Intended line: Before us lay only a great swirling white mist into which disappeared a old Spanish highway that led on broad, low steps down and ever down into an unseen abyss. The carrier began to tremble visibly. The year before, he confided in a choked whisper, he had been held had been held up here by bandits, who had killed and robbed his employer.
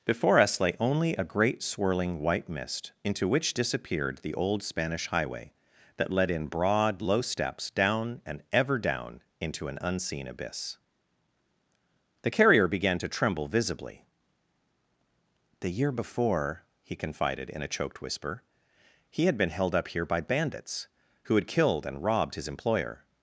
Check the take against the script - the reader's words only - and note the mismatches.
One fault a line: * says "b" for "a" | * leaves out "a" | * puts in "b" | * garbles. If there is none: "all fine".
* says "the" for "a"
* says "in" for "on"
* leaves out "had been held"